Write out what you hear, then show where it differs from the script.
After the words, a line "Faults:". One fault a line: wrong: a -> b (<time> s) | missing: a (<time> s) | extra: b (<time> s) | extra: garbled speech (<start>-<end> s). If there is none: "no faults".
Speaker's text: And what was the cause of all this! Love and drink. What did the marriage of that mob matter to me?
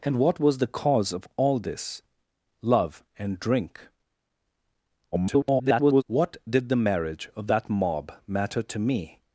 And what was the cause of all this! Love and drink. [garbled] What did the marriage of that mob matter to me?
Faults:
extra: garbled speech (5.1-6.0 s)